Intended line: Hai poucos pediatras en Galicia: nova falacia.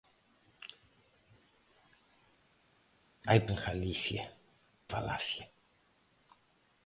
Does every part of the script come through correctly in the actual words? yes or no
no